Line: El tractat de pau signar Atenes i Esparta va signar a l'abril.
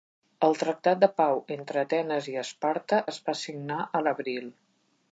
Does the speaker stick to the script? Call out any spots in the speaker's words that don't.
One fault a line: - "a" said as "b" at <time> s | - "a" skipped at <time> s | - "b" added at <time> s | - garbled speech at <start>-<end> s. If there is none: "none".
- "signar" said as "entre" at 1.6 s
- "es" added at 3.1 s